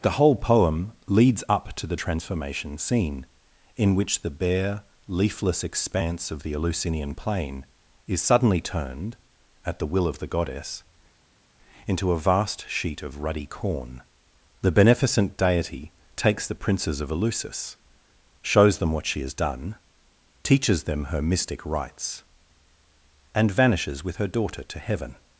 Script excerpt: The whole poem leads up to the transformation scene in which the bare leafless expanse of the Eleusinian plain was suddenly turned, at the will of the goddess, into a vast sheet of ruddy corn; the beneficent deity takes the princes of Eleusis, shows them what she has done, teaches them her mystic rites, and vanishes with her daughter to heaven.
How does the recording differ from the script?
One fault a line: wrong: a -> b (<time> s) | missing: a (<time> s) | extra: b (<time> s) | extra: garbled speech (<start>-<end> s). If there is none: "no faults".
wrong: was -> is (8.1 s)